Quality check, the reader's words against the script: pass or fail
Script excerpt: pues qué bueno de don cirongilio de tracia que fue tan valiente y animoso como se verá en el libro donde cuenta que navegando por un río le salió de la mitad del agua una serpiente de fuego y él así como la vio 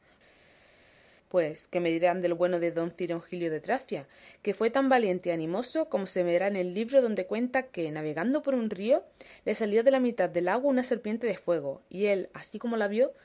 fail